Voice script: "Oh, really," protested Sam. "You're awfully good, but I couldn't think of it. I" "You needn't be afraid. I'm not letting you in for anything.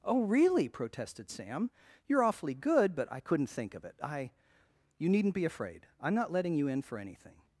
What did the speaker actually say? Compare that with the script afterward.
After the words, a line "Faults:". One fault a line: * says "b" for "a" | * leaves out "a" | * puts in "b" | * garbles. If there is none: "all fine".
"Oh, really," protested Sam. "You're awfully good, but I couldn't think of it. I" "You needn't be afraid. I'm not letting you in for anything.
Faults:
all fine